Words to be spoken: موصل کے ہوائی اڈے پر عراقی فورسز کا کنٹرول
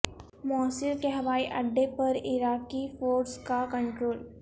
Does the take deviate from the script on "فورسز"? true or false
false